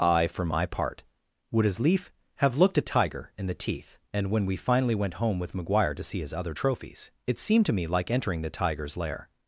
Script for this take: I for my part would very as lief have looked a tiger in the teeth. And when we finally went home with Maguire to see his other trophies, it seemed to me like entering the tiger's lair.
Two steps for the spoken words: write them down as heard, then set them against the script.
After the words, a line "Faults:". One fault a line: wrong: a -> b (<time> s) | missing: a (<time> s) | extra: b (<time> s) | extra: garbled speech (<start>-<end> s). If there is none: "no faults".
I for my part would as lief have looked a tiger in the teeth. And when we finally went home with Maguire to see his other trophies, it seemed to me like entering the tiger's lair.
Faults:
missing: very (1.6 s)